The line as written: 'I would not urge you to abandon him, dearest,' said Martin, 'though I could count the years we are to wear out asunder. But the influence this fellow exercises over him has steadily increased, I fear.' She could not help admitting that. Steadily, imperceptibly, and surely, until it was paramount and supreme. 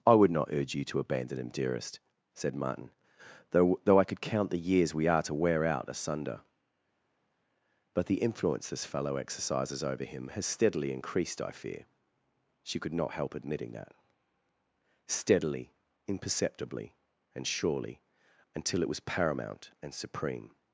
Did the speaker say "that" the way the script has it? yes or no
yes